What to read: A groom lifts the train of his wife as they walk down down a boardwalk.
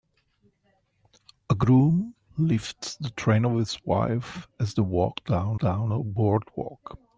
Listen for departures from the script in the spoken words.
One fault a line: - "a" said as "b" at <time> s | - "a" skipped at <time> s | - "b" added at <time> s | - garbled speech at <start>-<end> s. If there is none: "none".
none